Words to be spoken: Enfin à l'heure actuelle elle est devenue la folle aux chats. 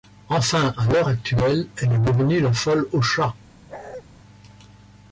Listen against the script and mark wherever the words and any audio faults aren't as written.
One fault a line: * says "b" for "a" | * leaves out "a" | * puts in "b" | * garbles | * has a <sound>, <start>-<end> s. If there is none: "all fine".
* has a bark, 3.7-4.0 s